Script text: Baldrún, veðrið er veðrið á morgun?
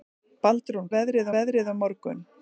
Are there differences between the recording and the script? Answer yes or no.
no